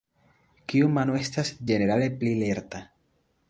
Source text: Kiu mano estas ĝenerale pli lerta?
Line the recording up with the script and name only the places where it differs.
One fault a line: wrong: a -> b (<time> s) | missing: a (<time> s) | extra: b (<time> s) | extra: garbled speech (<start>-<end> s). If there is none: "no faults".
no faults